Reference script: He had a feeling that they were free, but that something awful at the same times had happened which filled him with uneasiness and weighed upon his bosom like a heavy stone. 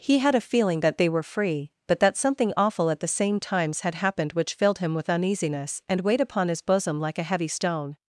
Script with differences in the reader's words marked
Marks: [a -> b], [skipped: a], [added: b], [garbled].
He had a feeling that they were free, but that something awful at the same times had happened which filled him with uneasiness and weighed upon his bosom like a heavy stone.